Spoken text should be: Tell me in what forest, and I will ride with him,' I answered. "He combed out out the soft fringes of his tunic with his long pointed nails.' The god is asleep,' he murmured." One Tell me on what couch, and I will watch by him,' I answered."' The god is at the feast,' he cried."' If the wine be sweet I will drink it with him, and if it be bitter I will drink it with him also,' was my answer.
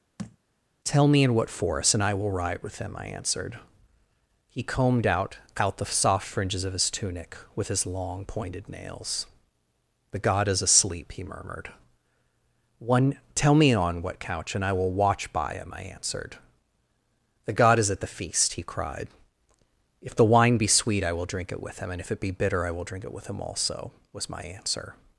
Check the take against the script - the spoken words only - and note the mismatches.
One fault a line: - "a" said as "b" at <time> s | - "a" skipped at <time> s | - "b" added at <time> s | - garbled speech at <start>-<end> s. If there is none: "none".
none